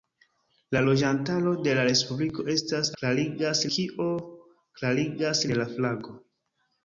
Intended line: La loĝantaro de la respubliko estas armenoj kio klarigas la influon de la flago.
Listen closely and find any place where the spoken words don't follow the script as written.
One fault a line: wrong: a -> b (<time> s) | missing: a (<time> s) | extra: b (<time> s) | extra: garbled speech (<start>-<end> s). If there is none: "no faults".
wrong: armenoj -> klarigas (3.0 s)
missing: la influon (5.5 s)